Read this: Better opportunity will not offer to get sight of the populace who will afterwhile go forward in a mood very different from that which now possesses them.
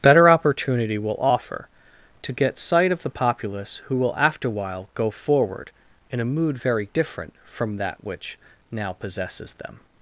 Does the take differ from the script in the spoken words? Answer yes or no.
yes